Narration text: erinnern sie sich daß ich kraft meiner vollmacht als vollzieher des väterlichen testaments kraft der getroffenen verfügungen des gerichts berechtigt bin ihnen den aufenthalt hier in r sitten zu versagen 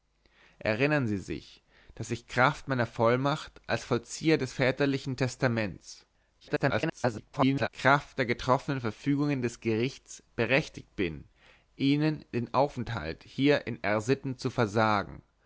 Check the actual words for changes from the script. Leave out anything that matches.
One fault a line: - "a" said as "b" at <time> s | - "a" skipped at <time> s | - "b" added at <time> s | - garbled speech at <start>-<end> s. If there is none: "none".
- garbled speech at 6.4-7.7 s